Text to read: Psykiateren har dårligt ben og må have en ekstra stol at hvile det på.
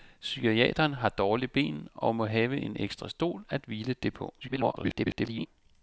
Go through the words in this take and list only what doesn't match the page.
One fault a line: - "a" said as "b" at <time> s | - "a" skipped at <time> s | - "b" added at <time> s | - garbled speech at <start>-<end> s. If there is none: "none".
- garbled speech at 4.4-5.5 s